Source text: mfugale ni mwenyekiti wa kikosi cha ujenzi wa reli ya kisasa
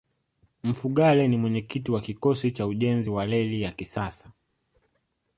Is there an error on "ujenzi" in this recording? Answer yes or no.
no